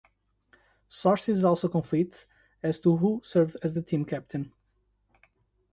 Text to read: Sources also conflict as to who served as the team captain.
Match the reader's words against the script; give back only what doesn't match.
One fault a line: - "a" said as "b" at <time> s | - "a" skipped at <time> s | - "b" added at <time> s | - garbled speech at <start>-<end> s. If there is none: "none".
none